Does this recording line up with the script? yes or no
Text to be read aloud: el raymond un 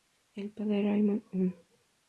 no